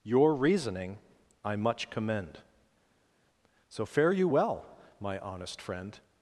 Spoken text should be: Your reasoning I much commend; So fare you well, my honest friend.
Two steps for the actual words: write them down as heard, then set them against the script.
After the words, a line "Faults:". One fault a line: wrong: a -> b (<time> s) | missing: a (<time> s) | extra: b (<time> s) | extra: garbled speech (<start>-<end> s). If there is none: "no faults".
Your reasoning I much commend; So fare you well, my honest friend.
Faults:
no faults